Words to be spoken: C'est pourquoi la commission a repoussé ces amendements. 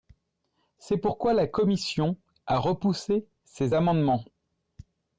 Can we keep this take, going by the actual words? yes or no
yes